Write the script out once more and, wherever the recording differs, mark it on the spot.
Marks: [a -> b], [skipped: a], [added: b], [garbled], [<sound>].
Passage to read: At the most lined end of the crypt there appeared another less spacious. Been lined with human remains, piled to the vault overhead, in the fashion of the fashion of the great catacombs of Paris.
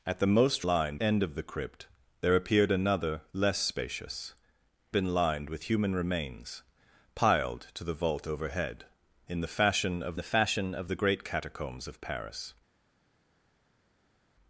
At the most lined end of the crypt there appeared another less spacious. Been lined with human remains, piled to the vault overhead, in the fashion of the fashion of the great catacombs of Paris.